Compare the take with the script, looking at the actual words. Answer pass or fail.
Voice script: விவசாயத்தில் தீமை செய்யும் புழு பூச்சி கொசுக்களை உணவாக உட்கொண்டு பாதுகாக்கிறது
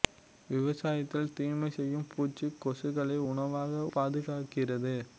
fail